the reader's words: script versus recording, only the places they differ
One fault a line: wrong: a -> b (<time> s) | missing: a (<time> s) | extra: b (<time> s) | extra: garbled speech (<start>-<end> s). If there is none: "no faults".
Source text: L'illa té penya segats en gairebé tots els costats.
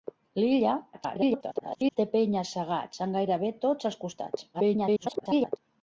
extra: garbled speech (0.9-2.0 s)
extra: garbled speech (4.5-5.6 s)